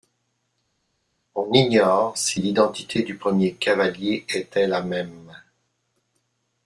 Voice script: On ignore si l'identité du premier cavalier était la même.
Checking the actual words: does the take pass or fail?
pass